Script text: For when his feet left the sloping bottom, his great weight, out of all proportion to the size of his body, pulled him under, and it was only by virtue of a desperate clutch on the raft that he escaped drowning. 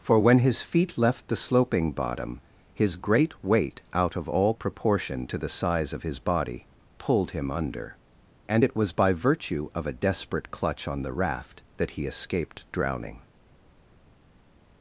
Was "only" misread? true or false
true